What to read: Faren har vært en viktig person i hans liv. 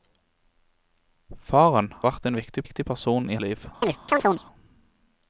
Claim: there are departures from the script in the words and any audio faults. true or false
true